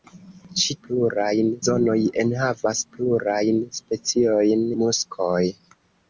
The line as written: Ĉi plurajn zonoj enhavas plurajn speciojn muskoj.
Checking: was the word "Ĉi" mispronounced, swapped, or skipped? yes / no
no